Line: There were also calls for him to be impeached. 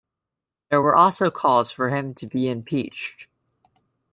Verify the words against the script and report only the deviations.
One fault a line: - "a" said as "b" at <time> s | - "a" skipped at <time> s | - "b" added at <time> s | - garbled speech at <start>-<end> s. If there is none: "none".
none